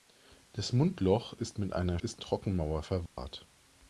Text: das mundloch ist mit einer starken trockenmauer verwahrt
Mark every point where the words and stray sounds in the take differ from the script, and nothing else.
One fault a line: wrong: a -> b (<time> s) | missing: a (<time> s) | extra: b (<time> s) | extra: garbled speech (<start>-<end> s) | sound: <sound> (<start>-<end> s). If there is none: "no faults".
wrong: starken -> ist (2.0 s)
sound: dropout (3.1-3.2 s)